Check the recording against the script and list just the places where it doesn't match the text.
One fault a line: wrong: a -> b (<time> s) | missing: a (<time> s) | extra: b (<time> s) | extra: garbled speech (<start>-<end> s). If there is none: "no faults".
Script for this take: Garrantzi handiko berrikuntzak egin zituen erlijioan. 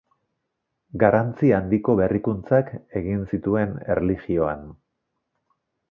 no faults